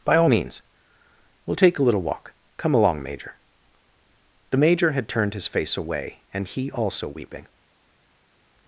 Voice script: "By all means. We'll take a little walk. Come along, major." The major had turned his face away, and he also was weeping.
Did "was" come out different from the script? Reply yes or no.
yes